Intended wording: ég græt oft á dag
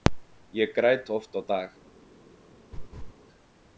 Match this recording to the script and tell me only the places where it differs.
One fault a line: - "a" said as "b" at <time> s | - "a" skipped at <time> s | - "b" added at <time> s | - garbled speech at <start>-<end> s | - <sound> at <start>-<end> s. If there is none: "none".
- laugh at 2.7-3.1 s